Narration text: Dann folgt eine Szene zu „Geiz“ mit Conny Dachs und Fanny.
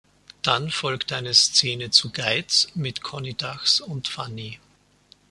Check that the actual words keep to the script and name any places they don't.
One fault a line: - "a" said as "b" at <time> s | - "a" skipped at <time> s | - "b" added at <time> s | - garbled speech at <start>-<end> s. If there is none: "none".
none